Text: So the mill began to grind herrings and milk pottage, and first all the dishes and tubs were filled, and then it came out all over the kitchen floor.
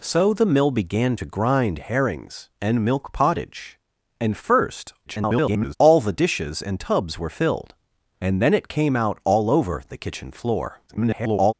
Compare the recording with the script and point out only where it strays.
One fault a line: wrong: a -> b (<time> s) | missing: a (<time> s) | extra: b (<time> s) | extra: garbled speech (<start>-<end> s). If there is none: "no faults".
extra: garbled speech (5.1-5.8 s)
extra: garbled speech (10.9-11.5 s)